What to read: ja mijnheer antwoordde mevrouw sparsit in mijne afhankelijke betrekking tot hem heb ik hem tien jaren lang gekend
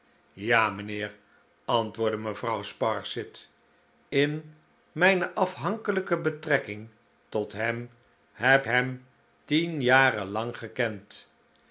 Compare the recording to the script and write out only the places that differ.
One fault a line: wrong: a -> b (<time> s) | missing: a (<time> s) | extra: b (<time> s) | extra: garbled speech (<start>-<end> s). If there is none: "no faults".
missing: ik (8.7 s)